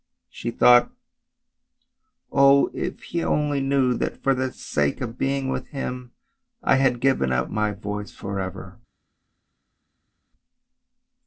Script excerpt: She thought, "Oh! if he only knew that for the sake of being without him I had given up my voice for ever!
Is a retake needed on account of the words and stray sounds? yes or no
yes